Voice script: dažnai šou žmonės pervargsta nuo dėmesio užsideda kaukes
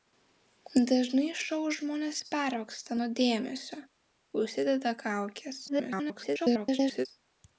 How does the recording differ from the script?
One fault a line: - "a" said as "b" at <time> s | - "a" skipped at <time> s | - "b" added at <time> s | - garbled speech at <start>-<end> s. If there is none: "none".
- garbled speech at 5.7-7.1 s